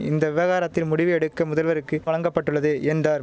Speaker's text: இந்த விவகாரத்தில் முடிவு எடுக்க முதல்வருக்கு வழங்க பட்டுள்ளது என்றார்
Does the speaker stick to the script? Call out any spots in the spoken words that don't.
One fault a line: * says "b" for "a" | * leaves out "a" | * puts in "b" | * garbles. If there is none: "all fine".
all fine